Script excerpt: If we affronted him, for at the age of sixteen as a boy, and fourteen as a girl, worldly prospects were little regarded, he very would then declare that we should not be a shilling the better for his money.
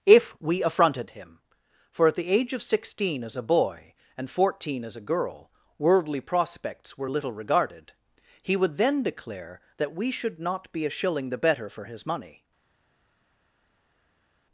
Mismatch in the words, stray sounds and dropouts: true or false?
true